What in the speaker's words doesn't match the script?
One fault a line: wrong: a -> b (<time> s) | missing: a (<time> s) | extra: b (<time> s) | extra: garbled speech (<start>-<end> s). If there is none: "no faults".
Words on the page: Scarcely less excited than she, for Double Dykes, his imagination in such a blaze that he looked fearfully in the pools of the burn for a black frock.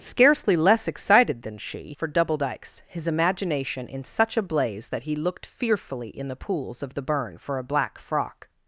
no faults